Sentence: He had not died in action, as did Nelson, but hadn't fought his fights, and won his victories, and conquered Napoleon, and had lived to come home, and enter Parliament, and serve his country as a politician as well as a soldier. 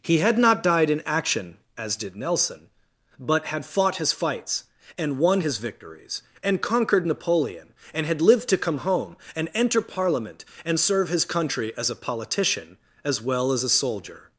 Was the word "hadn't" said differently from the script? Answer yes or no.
yes